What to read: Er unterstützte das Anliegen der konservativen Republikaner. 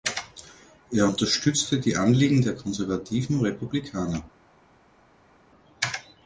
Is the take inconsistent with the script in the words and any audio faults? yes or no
yes